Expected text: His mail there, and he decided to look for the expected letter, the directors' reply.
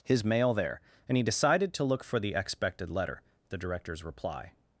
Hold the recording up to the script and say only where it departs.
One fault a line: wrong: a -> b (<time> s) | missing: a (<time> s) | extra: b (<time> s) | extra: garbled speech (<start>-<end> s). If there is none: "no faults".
no faults